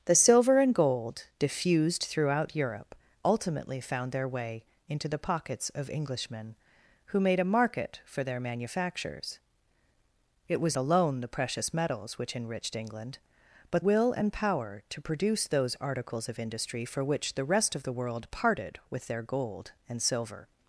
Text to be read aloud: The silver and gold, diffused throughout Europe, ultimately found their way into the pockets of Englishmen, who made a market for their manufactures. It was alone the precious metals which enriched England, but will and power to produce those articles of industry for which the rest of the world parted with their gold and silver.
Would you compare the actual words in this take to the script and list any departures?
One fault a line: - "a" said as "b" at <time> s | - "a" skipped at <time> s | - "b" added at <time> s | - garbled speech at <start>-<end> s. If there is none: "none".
none